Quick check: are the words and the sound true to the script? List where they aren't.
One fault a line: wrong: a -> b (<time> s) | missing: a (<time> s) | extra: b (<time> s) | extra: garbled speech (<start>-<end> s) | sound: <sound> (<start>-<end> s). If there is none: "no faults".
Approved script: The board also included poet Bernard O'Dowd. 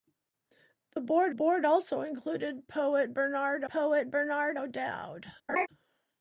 extra: board (1.3 s)
extra: poet Bernard (3.7 s)
sound: laugh (5.5-5.7 s)